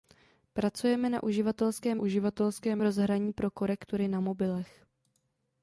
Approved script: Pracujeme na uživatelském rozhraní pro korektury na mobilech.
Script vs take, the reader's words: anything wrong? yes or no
yes